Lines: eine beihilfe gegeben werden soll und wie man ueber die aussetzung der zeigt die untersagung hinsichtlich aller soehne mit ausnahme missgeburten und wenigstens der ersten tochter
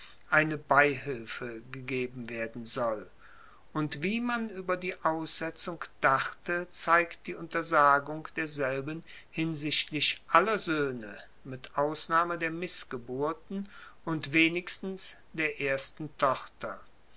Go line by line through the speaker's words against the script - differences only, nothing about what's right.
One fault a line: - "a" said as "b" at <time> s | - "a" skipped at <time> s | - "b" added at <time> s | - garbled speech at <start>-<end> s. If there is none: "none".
- "der" said as "dachte" at 6.0 s
- "derselben" added at 8.4 s
- "der" added at 12.4 s